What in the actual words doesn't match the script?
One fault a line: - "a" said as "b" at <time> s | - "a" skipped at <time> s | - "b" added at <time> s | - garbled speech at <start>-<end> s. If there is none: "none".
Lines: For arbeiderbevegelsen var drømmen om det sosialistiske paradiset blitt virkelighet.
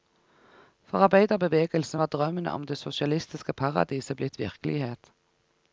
none